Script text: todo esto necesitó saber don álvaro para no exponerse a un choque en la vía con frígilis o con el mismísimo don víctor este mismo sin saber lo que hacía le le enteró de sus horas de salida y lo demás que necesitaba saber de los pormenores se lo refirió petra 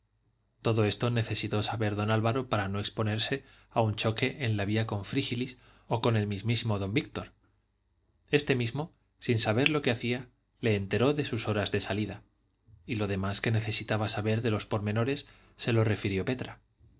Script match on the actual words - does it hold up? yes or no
no